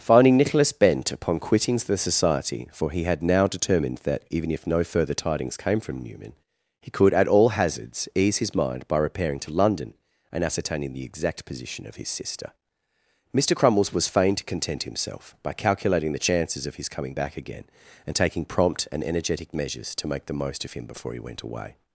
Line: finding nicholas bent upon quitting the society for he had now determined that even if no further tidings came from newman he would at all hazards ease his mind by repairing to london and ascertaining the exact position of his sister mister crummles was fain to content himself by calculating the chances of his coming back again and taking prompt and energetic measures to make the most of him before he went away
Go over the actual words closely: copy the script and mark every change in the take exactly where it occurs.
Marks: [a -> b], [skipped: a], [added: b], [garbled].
finding nicholas bent upon quitting the society for he had now determined that even if no further tidings came from newman he [would -> could] at all hazards ease his mind by repairing to london and ascertaining the exact position of his sister mister crummles was fain to content himself by calculating the chances of his coming back again and taking prompt and energetic measures to make the most of him before he went away